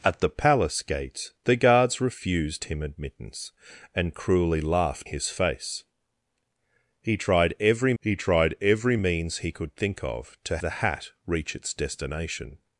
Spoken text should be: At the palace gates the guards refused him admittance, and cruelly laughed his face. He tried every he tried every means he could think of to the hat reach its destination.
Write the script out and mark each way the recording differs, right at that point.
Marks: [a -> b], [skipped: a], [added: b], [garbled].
At the palace gates the guards refused him admittance, and cruelly laughed his face. He tried every he tried every means he could think of to the hat reach its destination.